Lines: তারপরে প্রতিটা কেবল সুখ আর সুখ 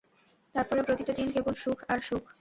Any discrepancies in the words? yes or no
yes